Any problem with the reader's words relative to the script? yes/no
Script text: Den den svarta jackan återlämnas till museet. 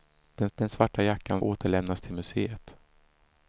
no